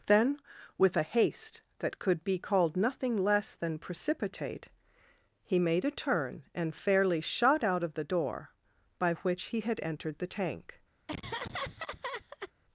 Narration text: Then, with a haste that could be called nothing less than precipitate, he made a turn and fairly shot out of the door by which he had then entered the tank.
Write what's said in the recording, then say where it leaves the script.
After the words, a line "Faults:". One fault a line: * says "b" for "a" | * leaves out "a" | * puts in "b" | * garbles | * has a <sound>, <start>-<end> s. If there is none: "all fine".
Then, with a haste that could be called nothing less than precipitate, he made a turn and fairly shot out of the door by which he had entered the tank.
Faults:
* leaves out "then"
* has a laugh, 11.1-12.5 s